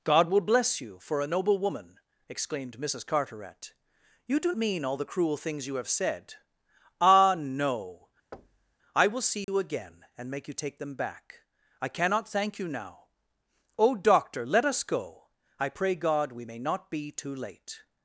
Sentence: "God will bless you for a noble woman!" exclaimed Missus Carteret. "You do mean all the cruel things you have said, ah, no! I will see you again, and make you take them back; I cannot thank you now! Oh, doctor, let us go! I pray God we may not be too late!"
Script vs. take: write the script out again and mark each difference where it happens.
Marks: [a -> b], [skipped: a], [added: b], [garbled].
"God will bless you for a noble woman!" exclaimed Missus Carteret. "You do mean all the cruel things you have said, ah, no! I will see you again, and make you take them back; I cannot thank you now! Oh, doctor, let us go! I pray God we may not be too late!"